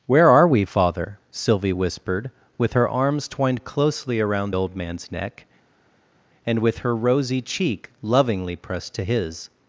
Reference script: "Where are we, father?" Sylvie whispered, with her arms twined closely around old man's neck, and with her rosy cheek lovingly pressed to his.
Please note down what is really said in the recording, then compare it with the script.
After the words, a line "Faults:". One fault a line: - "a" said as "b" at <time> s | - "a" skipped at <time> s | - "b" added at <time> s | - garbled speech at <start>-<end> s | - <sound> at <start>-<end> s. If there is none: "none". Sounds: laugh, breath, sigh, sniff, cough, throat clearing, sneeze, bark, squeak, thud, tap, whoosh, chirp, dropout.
"Where are we, father?" Sylvie whispered, with her arms twined closely around old man's neck, and with her rosy cheek lovingly pressed to his.
Faults:
none